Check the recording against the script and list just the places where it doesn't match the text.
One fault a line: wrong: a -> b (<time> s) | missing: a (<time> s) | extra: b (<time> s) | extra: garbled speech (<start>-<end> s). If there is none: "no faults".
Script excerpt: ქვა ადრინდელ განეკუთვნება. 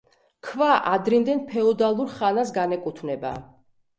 extra: ფეოდალურ ხანას (1.5 s)